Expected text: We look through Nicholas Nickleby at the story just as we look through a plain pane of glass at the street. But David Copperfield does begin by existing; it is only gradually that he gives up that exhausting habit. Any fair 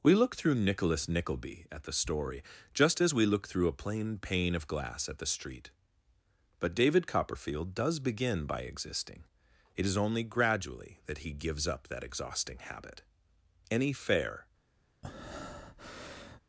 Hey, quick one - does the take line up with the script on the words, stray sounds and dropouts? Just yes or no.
no